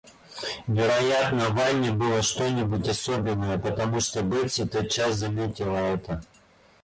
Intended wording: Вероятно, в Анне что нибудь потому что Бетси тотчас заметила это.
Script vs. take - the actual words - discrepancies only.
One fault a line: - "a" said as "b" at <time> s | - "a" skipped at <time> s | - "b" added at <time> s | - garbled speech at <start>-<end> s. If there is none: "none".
- "было" added at 1.9 s
- "особенное" added at 2.9 s